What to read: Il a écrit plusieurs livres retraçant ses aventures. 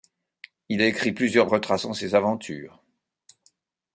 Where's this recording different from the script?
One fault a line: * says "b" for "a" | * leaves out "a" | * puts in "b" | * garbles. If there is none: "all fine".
* leaves out "livres"